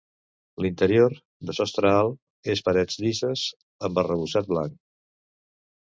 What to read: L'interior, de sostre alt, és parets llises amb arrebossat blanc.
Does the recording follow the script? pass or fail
pass